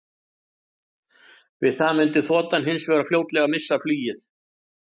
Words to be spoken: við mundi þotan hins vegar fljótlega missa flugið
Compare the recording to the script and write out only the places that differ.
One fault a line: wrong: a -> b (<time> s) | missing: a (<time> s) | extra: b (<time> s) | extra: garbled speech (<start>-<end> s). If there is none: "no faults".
extra: það (1.8 s)